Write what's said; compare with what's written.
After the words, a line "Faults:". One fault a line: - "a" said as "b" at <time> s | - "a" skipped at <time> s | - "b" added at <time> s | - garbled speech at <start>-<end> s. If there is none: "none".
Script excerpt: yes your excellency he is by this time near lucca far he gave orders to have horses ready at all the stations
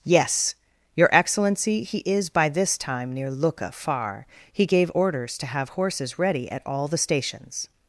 yes your excellency he is by this time near lucca far he gave orders to have horses ready at all the stations
Faults:
none